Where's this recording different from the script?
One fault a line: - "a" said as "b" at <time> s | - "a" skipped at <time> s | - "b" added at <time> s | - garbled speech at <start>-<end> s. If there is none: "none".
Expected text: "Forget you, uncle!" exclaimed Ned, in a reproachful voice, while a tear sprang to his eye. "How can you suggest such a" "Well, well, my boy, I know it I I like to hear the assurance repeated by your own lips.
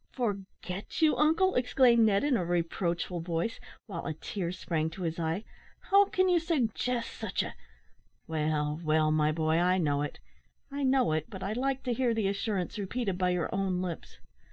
- "know it but" added at 10.8 s